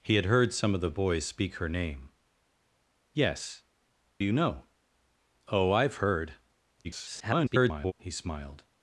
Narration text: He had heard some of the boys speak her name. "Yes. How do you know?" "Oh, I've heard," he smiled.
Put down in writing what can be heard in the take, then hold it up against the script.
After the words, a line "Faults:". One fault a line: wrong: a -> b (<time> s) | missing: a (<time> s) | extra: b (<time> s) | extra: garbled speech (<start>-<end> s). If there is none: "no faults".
He had heard some of the boys speak her name. "Yes. You know?" "Oh, I've heard," [garbled] he smiled.
Faults:
missing: How do (3.6 s)
extra: garbled speech (6.8-7.9 s)